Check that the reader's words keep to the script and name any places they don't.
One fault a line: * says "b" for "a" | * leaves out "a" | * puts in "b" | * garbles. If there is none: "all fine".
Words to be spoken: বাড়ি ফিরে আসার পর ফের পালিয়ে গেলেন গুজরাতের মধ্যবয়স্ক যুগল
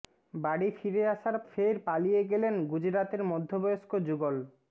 * leaves out "পর"